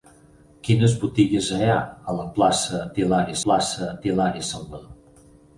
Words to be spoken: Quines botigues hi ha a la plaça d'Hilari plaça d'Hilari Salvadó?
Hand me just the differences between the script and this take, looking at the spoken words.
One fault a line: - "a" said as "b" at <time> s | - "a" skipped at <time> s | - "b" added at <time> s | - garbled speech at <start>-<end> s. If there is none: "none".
none